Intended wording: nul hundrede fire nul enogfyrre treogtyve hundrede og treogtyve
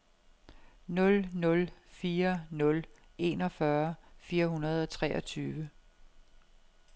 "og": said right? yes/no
yes